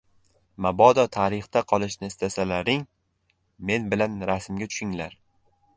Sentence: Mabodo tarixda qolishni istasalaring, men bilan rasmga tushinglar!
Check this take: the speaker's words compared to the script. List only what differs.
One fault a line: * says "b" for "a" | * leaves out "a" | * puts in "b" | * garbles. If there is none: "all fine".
all fine